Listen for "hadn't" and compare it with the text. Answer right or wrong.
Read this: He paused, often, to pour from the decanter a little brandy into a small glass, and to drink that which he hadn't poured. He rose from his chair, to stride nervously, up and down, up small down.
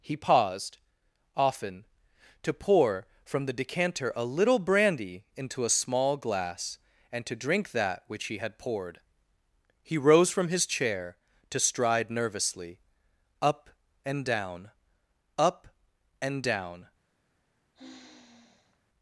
wrong